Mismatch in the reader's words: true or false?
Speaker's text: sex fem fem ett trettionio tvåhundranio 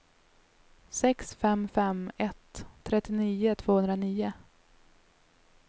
false